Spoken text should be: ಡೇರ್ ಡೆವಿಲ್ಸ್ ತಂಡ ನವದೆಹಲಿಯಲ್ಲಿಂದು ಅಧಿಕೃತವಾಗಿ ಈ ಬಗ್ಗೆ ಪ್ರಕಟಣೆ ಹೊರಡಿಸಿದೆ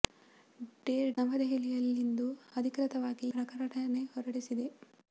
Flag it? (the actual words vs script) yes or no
yes